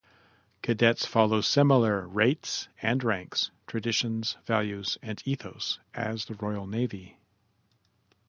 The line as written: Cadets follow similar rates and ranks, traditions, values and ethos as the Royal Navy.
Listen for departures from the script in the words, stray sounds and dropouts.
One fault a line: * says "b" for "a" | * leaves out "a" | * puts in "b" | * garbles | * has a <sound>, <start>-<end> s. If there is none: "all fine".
all fine